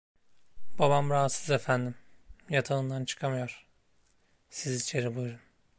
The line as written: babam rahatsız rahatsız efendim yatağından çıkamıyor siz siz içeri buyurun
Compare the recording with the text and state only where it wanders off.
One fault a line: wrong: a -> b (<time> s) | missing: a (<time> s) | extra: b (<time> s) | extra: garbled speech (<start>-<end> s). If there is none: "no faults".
missing: rahatsız (1.5 s)
missing: siz (4.8 s)